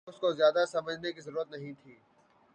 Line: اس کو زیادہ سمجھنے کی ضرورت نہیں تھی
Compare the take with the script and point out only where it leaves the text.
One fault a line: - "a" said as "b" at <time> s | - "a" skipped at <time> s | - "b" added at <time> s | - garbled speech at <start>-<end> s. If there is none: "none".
none